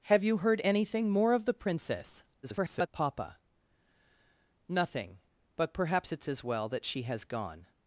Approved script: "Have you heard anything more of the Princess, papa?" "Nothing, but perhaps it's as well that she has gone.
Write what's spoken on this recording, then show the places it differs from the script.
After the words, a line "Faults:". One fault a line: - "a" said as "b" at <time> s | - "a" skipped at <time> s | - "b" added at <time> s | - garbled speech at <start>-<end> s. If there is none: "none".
"Have you heard anything more of the Princess, [garbled] papa?" "Nothing, but perhaps it's as well that she has gone.
Faults:
- garbled speech at 2.4-2.9 s